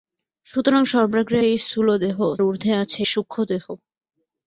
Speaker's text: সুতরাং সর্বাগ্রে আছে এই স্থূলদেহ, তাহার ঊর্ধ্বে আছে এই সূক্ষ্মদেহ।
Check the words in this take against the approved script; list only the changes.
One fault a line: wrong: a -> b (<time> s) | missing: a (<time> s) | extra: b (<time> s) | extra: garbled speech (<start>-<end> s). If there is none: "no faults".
missing: আছে (1.4 s)
missing: তাহার (2.2 s)
missing: এই (3.0 s)